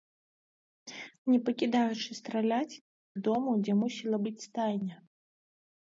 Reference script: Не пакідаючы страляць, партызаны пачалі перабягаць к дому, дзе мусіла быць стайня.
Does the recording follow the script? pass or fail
fail